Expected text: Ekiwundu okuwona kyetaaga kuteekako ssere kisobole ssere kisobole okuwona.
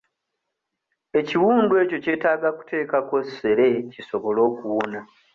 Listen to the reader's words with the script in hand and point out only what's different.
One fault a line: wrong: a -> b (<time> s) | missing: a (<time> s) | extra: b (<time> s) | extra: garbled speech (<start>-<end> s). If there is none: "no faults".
wrong: okuwona -> ekyo (1.8 s)
missing: ssere kisobole (4.4 s)